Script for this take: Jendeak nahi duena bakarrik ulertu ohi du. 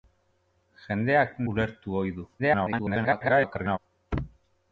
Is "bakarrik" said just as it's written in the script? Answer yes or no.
no